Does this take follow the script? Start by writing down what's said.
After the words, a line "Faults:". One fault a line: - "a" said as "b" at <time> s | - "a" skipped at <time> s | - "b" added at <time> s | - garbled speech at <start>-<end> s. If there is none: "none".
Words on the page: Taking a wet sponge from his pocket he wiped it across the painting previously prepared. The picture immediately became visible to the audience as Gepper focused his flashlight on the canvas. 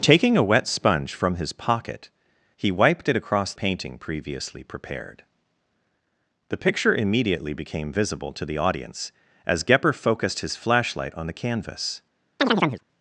Taking a wet sponge from his pocket he wiped it across painting previously prepared. The picture immediately became visible to the audience as Gepper focused his flashlight on the canvas.
Faults:
- "the" skipped at 3.5 s